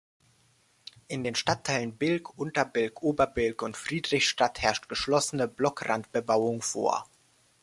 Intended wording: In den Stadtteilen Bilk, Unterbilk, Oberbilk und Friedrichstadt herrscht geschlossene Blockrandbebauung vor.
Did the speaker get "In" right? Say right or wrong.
right